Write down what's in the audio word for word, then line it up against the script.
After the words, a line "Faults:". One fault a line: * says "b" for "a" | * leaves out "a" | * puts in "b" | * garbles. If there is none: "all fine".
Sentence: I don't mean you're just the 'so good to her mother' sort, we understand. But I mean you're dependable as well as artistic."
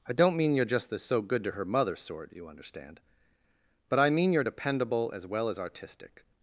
I don't mean you're just the 'so good to her mother' sort, you understand. But I mean you're dependable as well as artistic."
Faults:
* says "you" for "we"